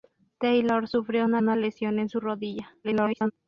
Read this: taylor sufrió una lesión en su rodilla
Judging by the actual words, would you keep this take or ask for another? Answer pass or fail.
fail